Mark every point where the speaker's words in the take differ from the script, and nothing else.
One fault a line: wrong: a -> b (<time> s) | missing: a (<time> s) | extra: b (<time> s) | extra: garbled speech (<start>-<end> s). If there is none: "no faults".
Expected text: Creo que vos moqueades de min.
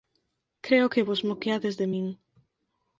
no faults